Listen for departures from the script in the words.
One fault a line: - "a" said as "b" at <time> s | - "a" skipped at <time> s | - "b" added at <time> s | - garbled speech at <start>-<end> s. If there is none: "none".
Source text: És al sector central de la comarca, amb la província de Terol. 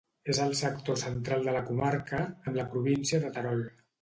none